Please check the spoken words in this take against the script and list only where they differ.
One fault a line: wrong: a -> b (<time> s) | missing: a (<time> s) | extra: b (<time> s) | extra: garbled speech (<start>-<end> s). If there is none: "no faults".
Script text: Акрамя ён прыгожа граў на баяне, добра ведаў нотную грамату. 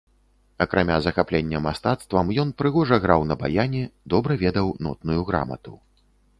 extra: захаплення мастацтвам (1.1 s)